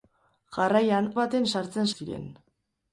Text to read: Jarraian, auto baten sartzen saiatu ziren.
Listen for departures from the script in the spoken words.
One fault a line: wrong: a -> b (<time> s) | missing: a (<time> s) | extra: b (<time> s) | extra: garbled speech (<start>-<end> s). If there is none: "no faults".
missing: auto (1.1 s)
missing: saiatu (2.0 s)